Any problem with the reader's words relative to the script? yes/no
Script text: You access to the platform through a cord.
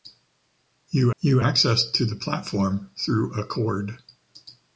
yes